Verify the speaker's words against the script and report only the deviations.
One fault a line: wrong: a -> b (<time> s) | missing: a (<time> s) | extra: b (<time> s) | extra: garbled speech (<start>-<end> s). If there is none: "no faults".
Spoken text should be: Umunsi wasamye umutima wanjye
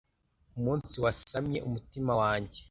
no faults